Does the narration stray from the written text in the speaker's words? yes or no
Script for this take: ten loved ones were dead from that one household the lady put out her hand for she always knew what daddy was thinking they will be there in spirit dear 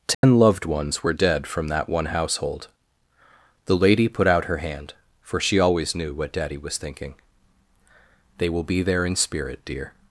no